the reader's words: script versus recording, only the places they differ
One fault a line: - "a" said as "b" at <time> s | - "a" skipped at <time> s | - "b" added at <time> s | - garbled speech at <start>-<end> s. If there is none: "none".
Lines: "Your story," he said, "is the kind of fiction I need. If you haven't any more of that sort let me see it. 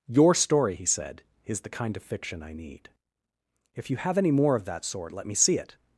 - "haven't" said as "have" at 4.0 s